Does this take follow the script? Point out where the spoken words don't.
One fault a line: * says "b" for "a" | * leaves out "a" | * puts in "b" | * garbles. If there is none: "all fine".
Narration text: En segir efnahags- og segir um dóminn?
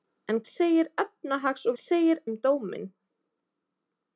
all fine